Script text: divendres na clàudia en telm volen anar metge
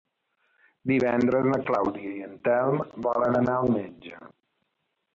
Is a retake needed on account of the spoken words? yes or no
yes